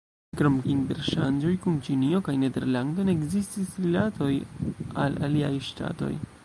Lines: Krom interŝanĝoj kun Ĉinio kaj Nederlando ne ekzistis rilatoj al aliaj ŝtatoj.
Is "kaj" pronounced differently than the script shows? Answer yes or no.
no